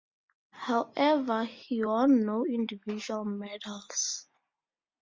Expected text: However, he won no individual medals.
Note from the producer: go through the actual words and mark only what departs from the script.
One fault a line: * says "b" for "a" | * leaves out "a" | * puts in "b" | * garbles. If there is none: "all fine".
all fine